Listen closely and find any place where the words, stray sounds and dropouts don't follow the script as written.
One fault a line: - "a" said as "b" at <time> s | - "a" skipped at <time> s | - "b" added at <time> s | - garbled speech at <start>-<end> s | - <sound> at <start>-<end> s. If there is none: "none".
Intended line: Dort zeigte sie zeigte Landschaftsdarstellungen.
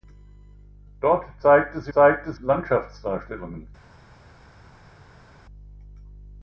none